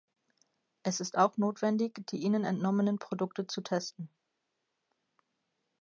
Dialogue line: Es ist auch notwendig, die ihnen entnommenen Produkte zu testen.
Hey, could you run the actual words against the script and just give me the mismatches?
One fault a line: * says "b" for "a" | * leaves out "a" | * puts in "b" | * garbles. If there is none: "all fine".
all fine